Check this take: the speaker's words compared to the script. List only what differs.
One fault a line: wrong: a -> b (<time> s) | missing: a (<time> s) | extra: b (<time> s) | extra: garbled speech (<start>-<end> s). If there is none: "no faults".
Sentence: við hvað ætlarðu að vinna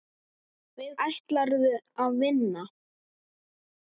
missing: hvað (0.9 s)